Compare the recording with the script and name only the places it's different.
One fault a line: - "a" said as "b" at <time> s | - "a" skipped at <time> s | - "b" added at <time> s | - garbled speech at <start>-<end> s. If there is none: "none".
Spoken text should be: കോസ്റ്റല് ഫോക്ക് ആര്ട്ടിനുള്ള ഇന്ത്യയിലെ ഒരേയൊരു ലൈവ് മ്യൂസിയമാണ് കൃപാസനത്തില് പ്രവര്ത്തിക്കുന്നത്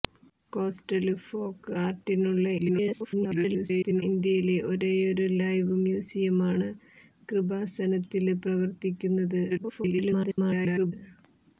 - garbled speech at 2.6-4.0 s
- garbled speech at 9.5-10.9 s